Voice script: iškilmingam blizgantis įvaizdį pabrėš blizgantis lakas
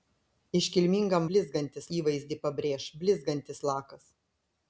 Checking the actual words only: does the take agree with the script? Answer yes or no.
yes